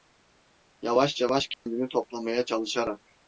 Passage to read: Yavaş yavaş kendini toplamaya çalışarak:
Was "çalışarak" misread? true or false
false